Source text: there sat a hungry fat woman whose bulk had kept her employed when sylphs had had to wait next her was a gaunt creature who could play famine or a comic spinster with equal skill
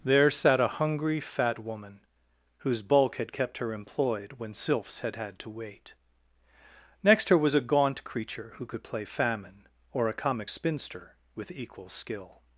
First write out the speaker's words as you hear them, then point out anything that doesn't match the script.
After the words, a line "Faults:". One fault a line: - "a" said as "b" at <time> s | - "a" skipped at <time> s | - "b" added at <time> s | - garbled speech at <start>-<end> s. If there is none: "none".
there sat a hungry fat woman whose bulk had kept her employed when sylphs had had to wait next her was a gaunt creature who could play famine or a comic spinster with equal skill
Faults:
none